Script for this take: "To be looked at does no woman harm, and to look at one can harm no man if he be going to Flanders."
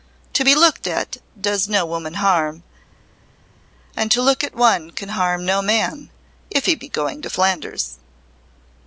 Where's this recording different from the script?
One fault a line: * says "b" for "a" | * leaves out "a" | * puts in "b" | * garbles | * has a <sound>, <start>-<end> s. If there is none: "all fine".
all fine